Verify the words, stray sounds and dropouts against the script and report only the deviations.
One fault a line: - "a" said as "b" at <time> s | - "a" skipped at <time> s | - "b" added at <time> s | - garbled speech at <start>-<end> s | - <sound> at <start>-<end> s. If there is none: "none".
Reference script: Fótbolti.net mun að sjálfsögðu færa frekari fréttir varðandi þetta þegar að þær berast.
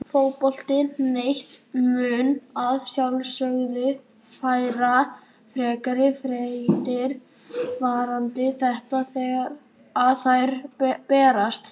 none